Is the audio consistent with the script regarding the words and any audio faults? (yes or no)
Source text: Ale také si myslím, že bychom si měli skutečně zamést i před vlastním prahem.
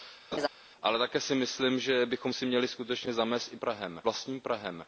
no